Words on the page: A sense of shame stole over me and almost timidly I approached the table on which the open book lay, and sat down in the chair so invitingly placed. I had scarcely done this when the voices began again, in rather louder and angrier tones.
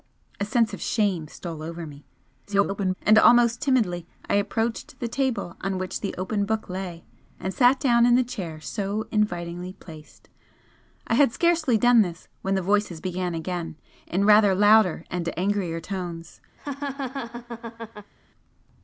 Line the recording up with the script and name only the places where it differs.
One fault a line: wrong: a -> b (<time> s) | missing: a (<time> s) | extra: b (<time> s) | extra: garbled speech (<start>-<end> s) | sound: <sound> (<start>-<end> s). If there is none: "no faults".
extra: garbled speech (2.5-2.9 s)
sound: laugh (16.6-18.1 s)